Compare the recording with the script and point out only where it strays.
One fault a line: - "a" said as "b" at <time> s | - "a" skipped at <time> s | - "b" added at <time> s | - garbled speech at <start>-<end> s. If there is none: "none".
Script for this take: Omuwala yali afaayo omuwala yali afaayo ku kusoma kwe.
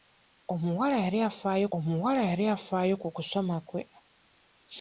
none